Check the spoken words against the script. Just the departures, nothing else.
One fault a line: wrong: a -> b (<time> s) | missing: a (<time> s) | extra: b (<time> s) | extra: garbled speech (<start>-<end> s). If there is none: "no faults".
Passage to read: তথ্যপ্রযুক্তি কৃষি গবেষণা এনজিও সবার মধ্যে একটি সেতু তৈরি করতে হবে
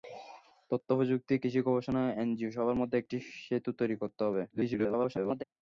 extra: garbled speech (4.5-5.4 s)